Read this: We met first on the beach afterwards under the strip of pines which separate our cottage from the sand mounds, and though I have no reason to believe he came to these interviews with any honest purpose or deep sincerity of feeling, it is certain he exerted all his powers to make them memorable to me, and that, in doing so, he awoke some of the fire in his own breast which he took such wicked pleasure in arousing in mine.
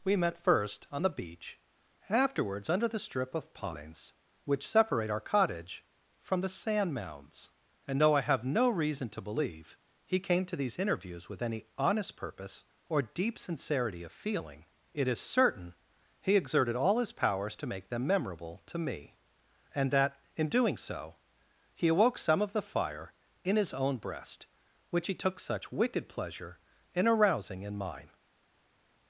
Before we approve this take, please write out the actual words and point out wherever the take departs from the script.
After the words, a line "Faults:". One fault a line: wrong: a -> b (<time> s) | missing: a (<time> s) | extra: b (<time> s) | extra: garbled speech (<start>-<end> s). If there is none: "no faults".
We met first on the beach afterwards under the strip of pines which separate our cottage from the sand mounds, and though I have no reason to believe he came to these interviews with any honest purpose or deep sincerity of feeling, it is certain he exerted all his powers to make them memorable to me, and that, in doing so, he awoke some of the fire in his own breast which he took such wicked pleasure in arousing in mine.
Faults:
no faults